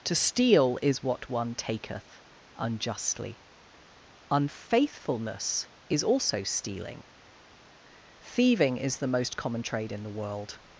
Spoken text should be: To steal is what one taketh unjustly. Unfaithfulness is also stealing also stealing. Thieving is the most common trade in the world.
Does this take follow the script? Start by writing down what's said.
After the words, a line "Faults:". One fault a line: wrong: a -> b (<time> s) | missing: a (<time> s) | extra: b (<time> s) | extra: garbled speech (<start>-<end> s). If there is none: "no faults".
To steal is what one taketh unjustly. Unfaithfulness is also stealing. Thieving is the most common trade in the world.
Faults:
missing: also stealing (7.0 s)